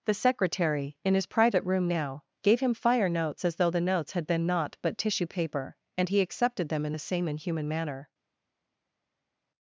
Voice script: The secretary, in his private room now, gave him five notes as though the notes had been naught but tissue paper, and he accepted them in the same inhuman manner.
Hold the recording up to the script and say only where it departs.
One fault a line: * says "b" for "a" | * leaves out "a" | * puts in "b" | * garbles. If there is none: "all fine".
* says "fire" for "five"